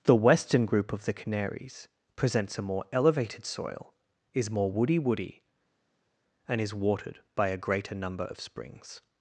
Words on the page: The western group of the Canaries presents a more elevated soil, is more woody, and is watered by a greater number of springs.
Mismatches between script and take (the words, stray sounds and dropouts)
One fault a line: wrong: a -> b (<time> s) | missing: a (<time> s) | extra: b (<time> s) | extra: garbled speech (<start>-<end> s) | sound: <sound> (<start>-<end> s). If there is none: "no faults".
extra: woody (5.0 s)